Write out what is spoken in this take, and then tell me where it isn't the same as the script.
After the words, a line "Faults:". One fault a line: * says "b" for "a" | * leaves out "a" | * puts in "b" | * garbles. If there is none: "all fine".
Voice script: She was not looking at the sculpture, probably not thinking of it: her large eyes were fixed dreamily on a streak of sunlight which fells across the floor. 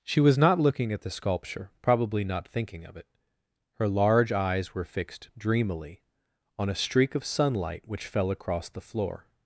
She was not looking at the sculpture, probably not thinking of it: her large eyes were fixed dreamily on a streak of sunlight which fell across the floor.
Faults:
* says "fell" for "fells"